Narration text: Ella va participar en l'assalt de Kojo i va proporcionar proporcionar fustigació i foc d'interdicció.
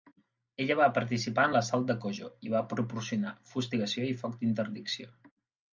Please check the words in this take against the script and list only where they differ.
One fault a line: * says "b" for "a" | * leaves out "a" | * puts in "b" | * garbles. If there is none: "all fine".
* leaves out "proporcionar"